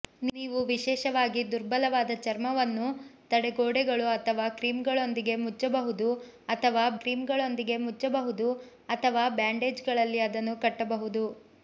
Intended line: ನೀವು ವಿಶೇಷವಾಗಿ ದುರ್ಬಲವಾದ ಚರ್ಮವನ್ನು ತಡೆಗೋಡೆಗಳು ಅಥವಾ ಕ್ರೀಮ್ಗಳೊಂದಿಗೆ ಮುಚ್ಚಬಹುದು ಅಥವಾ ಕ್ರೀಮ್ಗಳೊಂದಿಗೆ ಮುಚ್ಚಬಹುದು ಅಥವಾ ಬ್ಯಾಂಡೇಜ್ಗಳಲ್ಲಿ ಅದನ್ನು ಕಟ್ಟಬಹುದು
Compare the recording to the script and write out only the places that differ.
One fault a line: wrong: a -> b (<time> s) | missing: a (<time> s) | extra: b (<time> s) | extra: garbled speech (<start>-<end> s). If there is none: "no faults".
no faults